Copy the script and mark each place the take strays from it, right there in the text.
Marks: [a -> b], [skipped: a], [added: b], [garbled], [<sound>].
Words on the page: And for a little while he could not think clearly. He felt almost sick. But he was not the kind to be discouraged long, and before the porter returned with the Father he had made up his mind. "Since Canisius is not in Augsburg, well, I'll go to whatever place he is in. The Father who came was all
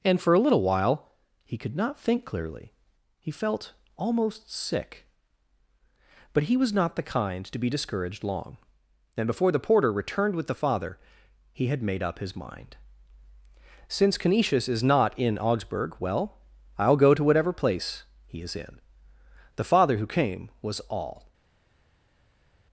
And for a little while he could not think clearly. He felt almost sick. But he was not the kind to be discouraged long, and before the porter returned with the Father he had made up his mind. "Since Canisius is not in Augsburg, well, I'll go to whatever place he is in. The Father who came was all